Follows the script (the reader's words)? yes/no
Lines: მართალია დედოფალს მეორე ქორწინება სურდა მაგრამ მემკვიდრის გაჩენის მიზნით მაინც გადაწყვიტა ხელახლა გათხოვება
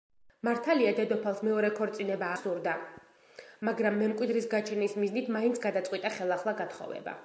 yes